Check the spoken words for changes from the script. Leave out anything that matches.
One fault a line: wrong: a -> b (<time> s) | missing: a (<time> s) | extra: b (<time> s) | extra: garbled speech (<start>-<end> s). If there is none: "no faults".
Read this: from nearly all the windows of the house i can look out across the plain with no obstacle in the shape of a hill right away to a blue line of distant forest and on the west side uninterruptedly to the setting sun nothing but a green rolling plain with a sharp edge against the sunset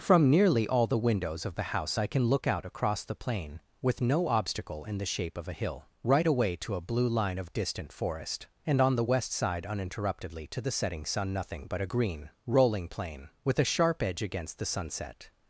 no faults